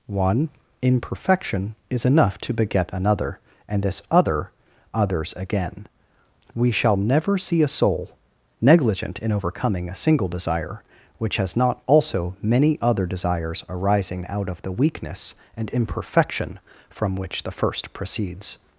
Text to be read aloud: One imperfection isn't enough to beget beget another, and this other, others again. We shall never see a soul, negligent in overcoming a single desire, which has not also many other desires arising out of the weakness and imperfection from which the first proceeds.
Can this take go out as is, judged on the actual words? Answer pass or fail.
fail